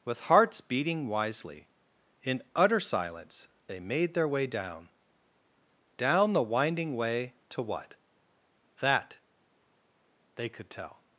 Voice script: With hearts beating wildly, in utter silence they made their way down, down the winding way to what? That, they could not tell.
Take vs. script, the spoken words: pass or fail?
fail